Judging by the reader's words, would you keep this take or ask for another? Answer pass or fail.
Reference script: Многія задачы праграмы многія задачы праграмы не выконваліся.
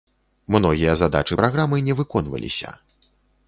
fail